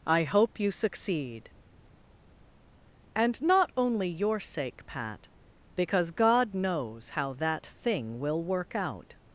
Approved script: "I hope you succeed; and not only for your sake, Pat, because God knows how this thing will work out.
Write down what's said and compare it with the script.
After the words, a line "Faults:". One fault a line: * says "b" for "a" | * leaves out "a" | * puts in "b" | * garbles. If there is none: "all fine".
"I hope you succeed; and not only your sake, Pat, because God knows how that thing will work out.
Faults:
* leaves out "for"
* says "that" for "this"